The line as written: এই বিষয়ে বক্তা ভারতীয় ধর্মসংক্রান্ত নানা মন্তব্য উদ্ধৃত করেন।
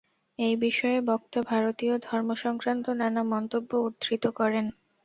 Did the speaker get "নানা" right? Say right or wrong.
right